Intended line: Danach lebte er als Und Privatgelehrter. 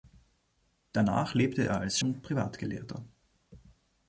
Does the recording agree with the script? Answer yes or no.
yes